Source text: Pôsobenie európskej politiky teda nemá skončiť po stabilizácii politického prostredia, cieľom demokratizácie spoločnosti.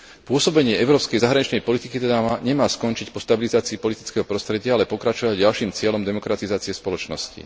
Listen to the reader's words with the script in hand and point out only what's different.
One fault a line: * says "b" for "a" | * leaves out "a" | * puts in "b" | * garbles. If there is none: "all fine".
* puts in "zahraničnej"
* puts in "ale pokračovať ďalším"